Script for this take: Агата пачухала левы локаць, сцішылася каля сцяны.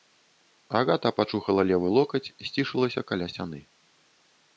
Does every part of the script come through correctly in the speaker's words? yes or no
yes